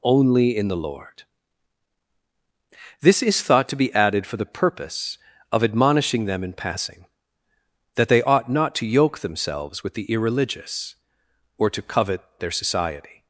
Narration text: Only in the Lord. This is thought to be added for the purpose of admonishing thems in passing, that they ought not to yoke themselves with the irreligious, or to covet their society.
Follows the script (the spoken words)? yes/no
no